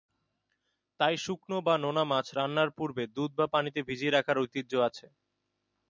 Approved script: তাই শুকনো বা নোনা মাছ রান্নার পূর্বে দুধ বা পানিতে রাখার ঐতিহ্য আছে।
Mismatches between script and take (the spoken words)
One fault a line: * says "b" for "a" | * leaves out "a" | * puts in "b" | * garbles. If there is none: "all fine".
* puts in "ভিজিয়ে"